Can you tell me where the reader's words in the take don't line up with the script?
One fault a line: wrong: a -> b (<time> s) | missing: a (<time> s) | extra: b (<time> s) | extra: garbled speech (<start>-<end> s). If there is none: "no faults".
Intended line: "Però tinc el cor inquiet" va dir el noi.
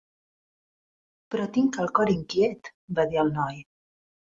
no faults